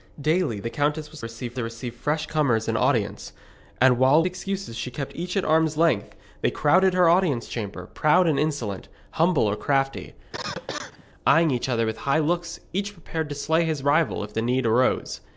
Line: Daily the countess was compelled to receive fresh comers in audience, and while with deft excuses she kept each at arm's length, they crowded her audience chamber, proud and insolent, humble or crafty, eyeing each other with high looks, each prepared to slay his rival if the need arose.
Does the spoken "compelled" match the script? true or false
false